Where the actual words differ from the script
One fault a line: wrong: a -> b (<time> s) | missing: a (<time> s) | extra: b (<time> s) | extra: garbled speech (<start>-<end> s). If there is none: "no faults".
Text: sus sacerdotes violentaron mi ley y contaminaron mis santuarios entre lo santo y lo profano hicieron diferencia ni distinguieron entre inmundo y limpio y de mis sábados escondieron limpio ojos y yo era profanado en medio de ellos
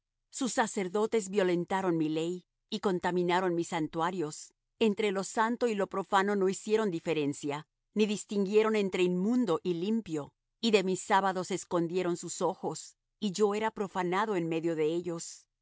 extra: no (6.3 s)
wrong: limpio -> sus (12.2 s)